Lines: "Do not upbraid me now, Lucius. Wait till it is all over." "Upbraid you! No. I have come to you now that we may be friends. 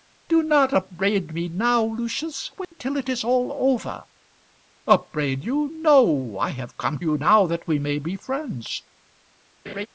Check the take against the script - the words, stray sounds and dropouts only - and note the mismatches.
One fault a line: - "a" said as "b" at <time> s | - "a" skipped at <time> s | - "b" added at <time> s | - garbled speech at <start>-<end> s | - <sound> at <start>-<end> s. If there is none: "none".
- dropout at 2.6-2.7 s
- "to" skipped at 7.0 s
- laugh at 9.7-9.9 s